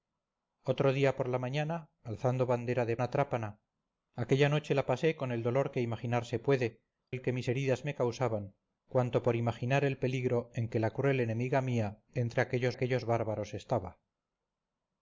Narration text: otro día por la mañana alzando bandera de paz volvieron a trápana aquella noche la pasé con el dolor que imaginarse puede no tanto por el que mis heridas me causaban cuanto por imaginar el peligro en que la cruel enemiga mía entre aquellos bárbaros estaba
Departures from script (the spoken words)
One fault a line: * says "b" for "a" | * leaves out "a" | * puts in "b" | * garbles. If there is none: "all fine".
* leaves out "paz volvieron"
* leaves out "no tanto por"
* puts in "aquellos"